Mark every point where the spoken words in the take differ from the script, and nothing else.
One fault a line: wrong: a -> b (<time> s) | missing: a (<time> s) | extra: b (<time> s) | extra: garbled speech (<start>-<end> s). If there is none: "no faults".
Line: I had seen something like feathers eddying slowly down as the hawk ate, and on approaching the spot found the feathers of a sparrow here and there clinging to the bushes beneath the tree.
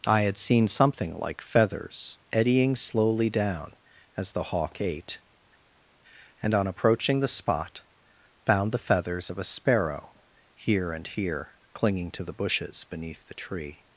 wrong: there -> here (11.1 s)